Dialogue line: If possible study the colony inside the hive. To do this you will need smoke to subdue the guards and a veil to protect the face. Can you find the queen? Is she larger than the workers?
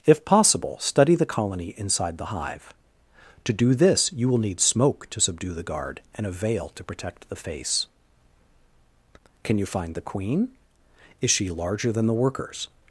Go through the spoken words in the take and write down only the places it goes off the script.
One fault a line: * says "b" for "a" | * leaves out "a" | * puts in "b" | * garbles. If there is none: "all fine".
* says "guard" for "guards"